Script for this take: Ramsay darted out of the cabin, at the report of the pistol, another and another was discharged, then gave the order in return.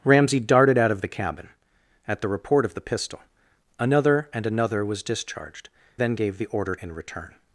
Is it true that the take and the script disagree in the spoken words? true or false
false